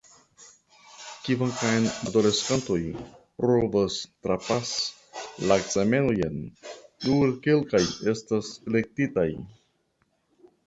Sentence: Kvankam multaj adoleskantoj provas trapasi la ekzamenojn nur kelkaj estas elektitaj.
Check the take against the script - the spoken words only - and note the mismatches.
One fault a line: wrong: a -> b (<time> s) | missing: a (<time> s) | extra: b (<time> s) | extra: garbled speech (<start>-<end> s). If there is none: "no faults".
missing: multaj (1.8 s)